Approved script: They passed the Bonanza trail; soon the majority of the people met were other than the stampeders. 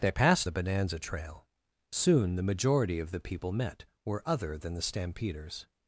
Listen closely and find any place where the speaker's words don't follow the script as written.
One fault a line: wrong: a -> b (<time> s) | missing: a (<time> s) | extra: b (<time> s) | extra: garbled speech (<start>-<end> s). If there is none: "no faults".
no faults